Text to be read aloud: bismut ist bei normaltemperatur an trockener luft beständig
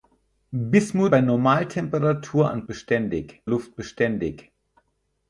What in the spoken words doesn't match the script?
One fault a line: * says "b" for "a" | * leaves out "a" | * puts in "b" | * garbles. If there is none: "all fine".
* leaves out "ist"
* says "beständig" for "trockener"